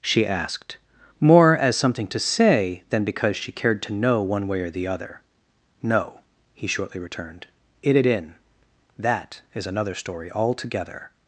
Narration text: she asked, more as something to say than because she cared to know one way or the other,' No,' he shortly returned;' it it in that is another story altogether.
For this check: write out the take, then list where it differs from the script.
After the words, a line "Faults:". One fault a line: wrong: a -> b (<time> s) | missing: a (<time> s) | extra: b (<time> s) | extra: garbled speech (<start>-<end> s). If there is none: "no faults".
she asked, more as something to say than because she cared to know one way or the other,' No,' he shortly returned;' it it in that is another story altogether.
Faults:
no faults